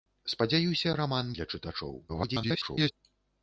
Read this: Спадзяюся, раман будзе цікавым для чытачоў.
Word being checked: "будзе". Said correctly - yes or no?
no